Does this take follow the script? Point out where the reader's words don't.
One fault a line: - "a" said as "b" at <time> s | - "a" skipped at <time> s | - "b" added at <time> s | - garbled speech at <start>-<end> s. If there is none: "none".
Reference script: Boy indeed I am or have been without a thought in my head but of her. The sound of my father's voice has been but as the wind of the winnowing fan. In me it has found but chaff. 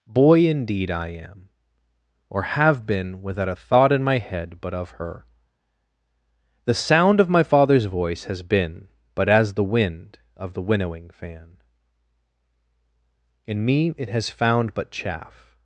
none